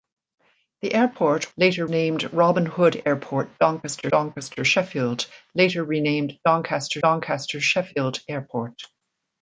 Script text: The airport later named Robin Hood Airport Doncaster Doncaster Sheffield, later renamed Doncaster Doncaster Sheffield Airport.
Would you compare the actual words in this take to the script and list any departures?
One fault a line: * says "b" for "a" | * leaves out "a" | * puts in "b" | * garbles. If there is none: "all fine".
all fine